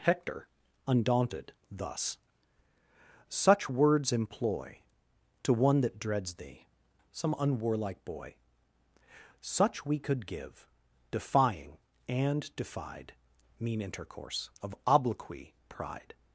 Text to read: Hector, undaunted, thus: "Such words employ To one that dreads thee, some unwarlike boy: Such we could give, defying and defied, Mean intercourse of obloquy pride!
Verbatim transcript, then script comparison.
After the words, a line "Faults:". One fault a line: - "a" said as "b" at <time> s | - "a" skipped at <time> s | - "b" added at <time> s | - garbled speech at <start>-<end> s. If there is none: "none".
Hector, undaunted, thus: "Such words employ To one that dreads thee, some unwarlike boy: Such we could give, defying and defied, Mean intercourse of obloquy pride!
Faults:
none